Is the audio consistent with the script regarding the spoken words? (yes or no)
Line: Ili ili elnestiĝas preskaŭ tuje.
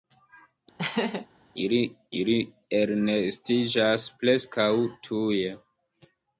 yes